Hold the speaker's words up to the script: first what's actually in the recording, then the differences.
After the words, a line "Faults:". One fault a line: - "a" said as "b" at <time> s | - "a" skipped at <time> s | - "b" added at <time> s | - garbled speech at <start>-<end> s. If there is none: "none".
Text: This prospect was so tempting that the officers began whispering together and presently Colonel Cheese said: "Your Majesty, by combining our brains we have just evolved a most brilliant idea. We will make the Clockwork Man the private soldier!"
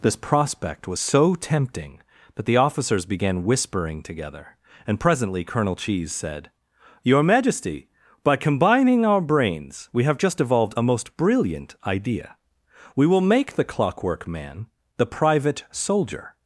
This prospect was so tempting that the officers began whispering together and presently Colonel Cheese said: "Your Majesty, by combining our brains we have just evolved a most brilliant idea. We will make the Clockwork Man the private soldier!"
Faults:
none